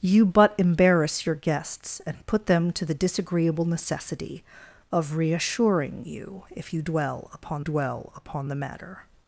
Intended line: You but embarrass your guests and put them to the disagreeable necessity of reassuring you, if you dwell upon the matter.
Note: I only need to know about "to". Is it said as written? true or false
true